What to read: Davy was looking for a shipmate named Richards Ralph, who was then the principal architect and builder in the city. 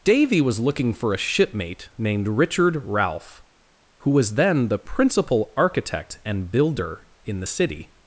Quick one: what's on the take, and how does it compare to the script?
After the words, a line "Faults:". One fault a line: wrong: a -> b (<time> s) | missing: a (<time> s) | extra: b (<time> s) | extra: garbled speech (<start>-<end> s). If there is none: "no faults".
Davy was looking for a shipmate named Richard Ralph, who was then the principal architect and builder in the city.
Faults:
wrong: Richards -> Richard (2.3 s)